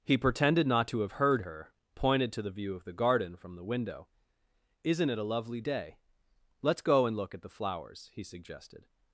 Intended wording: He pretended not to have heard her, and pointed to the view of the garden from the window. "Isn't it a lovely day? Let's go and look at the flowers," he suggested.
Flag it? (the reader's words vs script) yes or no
yes